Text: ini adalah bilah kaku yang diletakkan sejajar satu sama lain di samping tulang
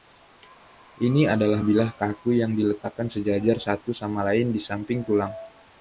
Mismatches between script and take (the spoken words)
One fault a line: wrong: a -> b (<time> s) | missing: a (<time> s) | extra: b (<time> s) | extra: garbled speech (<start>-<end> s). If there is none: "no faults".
no faults